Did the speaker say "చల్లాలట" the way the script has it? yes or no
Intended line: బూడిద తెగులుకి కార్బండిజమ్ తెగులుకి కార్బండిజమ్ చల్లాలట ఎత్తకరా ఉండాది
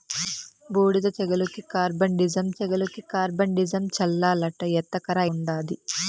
yes